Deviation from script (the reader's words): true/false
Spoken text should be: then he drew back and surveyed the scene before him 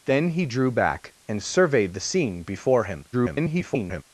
true